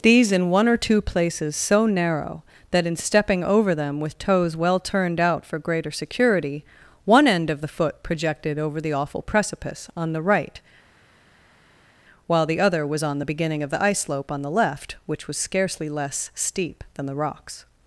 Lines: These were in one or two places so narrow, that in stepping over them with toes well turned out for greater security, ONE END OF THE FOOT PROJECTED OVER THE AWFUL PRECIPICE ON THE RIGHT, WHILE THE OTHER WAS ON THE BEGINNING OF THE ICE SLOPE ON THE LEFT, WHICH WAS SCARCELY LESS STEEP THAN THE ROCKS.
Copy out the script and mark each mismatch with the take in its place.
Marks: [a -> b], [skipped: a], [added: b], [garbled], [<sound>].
These [skipped: were] in one or two places so narrow, that in stepping over them with toes well turned out for greater security, ONE END OF THE FOOT PROJECTED OVER THE AWFUL PRECIPICE ON THE RIGHT, WHILE THE OTHER WAS ON THE BEGINNING OF THE ICE SLOPE ON THE LEFT, WHICH WAS SCARCELY LESS STEEP THAN THE ROCKS.